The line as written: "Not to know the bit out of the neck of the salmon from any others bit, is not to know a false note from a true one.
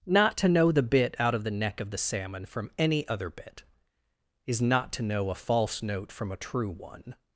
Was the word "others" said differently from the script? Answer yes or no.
yes